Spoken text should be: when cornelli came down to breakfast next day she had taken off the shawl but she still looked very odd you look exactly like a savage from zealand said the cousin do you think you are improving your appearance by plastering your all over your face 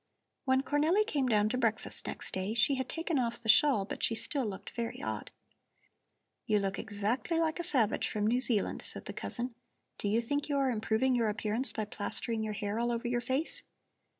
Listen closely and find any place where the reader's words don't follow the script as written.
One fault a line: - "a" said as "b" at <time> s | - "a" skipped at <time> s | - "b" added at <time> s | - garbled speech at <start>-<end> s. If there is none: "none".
- "new" added at 8.3 s
- "hair" added at 12.5 s